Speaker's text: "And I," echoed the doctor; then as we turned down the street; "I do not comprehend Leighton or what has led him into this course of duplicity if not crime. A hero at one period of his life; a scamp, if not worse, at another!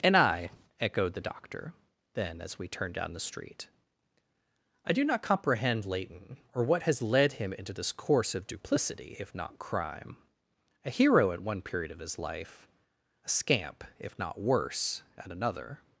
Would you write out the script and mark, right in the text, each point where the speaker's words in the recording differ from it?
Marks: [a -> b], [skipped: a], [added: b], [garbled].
"And I," echoed the doctor; then as we turned down the street; "I do not comprehend Leighton or what has led him into this course of duplicity if not crime. A hero at one period of his life; a scamp, if not worse, at another!